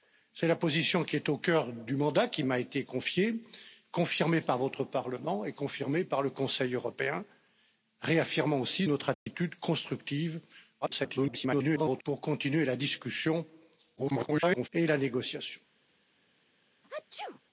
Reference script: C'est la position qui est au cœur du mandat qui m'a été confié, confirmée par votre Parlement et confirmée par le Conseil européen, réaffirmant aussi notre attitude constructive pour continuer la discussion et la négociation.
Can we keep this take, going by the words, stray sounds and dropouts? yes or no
no